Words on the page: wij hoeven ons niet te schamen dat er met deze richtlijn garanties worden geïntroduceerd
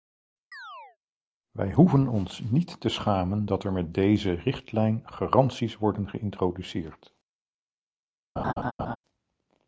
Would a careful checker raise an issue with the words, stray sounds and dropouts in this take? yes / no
yes